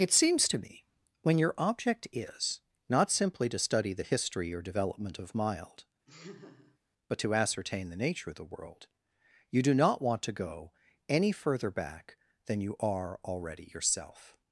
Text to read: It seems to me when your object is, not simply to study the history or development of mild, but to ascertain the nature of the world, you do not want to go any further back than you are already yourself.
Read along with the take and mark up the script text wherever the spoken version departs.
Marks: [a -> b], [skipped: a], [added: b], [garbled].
It seems to me when your object is, not simply to study the history or development of mild, but to ascertain the nature of the world, you do not want to go any further back than you are already yourself.